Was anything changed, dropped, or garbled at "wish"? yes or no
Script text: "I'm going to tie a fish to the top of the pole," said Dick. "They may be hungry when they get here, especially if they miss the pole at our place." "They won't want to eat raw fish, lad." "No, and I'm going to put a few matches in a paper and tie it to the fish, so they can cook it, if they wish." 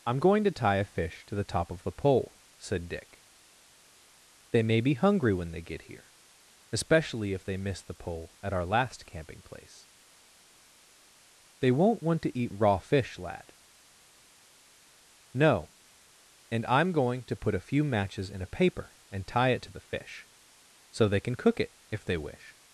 no